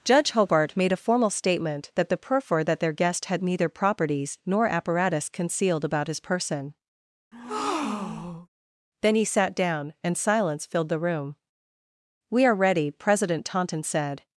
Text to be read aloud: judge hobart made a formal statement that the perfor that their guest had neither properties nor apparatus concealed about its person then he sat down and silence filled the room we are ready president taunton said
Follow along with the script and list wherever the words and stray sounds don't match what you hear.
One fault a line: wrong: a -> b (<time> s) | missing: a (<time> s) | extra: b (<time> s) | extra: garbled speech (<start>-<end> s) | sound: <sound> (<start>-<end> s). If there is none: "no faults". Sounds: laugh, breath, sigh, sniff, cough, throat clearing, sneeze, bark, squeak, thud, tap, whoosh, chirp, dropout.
wrong: its -> his (6.1 s)
sound: breath (7.3-8.5 s)